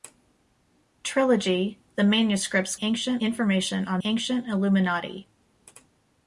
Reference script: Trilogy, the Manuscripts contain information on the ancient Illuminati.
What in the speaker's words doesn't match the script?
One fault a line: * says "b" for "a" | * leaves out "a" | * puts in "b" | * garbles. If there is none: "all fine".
* says "ancient" for "contain"
* leaves out "the"